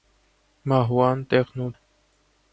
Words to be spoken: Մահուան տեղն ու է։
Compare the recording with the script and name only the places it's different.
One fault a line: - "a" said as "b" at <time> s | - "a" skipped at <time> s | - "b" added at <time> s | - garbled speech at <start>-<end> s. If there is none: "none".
none